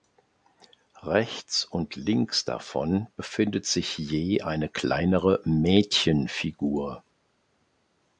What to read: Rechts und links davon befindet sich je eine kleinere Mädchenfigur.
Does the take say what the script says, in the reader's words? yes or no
yes